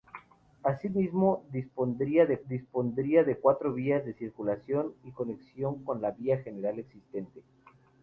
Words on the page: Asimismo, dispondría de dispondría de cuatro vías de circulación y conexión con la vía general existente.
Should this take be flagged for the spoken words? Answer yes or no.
no